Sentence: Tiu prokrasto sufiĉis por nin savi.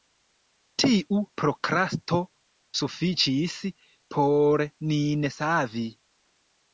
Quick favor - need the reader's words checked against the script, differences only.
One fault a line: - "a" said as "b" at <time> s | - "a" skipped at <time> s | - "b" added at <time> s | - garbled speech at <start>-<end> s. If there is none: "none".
none